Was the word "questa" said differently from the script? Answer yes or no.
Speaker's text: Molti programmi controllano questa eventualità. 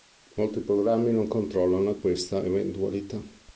no